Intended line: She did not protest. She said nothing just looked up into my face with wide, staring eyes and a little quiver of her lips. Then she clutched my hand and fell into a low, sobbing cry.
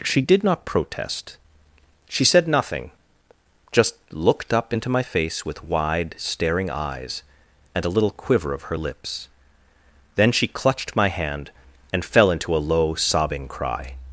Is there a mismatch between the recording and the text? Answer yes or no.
no